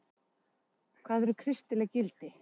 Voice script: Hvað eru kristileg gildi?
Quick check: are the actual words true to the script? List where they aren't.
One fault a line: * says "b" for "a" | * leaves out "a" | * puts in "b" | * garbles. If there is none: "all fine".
all fine